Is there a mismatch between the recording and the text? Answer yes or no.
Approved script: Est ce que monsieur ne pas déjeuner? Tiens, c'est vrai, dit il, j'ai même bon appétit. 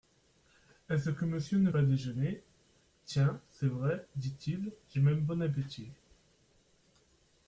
no